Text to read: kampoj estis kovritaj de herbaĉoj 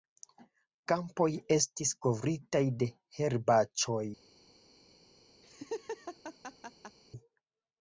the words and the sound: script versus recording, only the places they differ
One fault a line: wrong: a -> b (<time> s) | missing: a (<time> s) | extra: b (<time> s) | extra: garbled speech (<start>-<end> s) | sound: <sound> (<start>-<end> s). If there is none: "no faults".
sound: laugh (5.4-7.0 s)